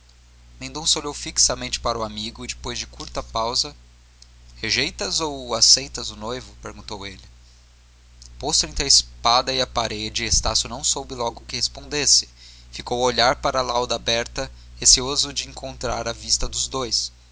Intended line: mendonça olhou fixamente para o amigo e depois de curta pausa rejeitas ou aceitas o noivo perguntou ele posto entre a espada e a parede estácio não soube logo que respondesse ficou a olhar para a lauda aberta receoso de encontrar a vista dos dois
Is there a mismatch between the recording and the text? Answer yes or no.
no